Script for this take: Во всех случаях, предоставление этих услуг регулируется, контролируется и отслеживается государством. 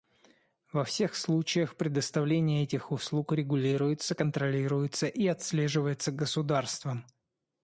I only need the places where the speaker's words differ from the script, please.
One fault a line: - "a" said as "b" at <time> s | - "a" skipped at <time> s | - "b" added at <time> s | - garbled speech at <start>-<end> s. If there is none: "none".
none